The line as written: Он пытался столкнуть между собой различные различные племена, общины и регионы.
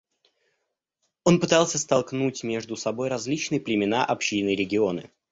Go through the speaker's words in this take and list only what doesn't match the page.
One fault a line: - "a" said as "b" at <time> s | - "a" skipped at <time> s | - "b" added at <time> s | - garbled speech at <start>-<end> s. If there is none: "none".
- "различные" skipped at 3.6 s